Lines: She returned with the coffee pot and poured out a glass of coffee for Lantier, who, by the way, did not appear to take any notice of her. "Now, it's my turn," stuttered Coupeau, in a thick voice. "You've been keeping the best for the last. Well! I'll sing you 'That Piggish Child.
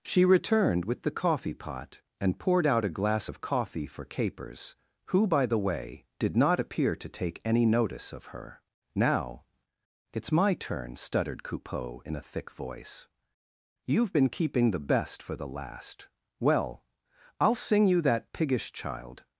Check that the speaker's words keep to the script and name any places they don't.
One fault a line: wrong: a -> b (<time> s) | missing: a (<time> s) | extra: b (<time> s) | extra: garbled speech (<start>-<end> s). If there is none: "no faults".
wrong: Lantier -> Capers (4.0 s)